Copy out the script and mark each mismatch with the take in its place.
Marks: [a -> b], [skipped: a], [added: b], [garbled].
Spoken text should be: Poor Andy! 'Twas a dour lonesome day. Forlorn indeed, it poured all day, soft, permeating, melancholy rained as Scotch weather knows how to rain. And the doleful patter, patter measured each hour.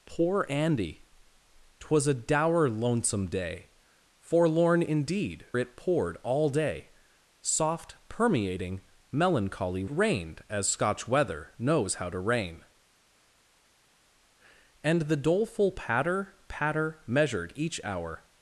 Poor Andy! 'Twas a dour lonesome day. Forlorn indeed, it poured all day, soft, permeating, melancholy rained as Scotch weather knows how to rain. And the doleful patter, patter measured each hour.